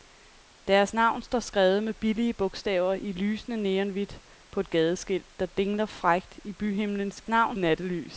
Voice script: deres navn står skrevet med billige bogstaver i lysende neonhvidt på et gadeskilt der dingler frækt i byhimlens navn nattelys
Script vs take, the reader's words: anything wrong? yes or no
no